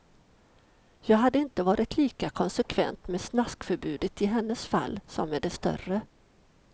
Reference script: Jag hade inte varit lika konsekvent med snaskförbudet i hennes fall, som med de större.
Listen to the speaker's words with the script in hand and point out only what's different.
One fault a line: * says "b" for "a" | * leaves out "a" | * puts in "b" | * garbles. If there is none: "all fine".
all fine